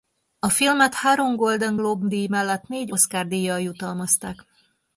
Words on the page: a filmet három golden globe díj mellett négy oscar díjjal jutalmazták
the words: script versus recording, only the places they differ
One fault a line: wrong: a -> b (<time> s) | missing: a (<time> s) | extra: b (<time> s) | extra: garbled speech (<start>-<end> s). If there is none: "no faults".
no faults